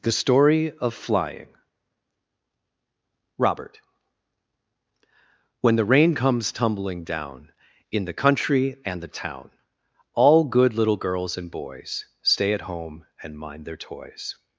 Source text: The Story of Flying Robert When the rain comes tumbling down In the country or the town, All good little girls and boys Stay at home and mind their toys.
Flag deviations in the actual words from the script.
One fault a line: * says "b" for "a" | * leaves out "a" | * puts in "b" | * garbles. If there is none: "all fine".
* says "and" for "or"